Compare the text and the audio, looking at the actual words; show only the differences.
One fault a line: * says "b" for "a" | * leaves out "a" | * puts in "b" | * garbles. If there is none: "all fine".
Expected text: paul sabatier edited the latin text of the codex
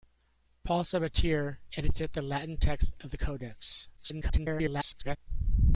* garbles